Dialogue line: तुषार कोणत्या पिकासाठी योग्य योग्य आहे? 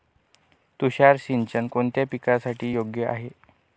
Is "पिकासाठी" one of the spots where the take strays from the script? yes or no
no